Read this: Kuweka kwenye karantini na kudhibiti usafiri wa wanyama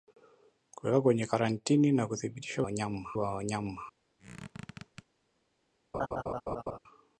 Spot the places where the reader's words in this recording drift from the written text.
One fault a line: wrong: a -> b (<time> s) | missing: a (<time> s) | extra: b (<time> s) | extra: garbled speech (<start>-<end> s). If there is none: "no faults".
wrong: usafiri -> wanyama (2.6 s)